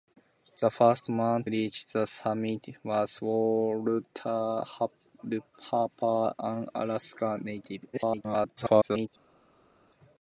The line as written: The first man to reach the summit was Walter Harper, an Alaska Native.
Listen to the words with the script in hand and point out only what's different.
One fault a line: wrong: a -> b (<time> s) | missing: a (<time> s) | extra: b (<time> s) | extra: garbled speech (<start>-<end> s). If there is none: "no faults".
missing: to (1.4 s)
extra: garbled speech (7.9-9.1 s)